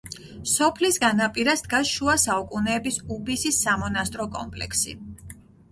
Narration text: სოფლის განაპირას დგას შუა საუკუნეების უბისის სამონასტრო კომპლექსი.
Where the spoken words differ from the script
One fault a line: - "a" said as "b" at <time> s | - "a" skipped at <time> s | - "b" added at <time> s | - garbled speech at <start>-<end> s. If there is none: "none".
none